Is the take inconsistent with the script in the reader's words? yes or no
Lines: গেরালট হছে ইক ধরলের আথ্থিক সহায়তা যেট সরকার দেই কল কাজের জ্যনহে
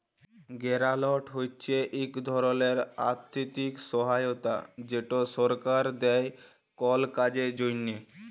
no